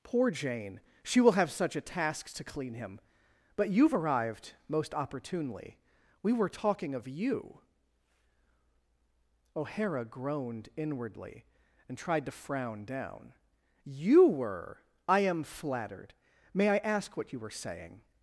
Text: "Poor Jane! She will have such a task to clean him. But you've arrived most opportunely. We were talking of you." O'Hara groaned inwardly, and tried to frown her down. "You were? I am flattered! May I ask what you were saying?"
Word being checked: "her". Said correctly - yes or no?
no